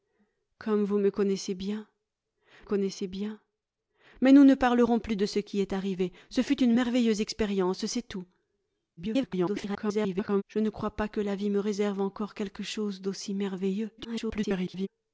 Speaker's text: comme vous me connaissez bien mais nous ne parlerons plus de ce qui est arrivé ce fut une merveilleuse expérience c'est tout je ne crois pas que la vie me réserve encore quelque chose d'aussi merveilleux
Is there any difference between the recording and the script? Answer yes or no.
yes